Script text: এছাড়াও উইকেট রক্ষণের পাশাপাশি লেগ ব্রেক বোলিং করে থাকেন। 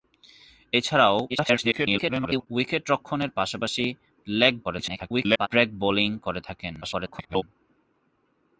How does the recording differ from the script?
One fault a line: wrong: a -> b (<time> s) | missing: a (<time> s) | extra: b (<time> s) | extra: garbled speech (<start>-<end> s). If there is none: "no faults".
extra: garbled speech (1.3-2.5 s)
extra: garbled speech (4.6-5.5 s)
extra: garbled speech (6.8-7.4 s)